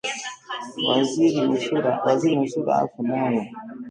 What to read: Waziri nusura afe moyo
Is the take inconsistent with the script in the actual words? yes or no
no